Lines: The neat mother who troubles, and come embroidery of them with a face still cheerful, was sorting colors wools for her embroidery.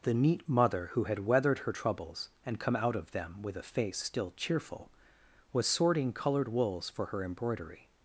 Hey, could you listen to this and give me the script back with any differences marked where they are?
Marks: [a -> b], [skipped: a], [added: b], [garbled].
The neat mother who [added: had weathered her] troubles, and come [embroidery -> out] of them with a face still cheerful, was sorting [colors -> colored] wools for her embroidery.